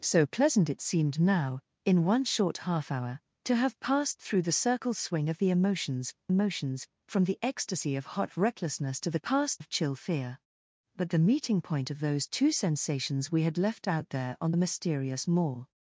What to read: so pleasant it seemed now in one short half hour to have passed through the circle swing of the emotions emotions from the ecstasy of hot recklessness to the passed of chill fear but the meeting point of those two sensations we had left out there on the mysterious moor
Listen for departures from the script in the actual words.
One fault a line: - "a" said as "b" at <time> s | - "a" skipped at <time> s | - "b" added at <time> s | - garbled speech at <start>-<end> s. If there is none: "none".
none